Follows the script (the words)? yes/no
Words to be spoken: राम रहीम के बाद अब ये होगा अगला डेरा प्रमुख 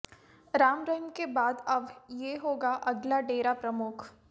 yes